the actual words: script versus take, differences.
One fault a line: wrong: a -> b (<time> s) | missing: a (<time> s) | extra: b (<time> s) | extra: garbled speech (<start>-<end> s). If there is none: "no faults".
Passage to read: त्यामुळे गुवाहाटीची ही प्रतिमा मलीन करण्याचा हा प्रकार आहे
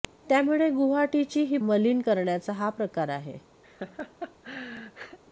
missing: प्रतिमा (1.6 s)